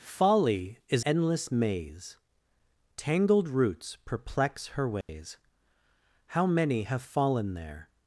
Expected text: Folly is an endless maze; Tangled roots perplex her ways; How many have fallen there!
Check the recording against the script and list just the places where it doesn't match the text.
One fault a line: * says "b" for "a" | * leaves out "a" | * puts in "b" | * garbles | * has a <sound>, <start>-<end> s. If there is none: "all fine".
* leaves out "an"
* has a dropout, 5.0-5.1 s